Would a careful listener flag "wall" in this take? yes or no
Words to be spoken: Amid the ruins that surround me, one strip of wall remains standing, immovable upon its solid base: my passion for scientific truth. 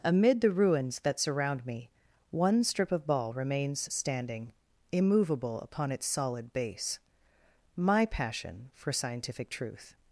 yes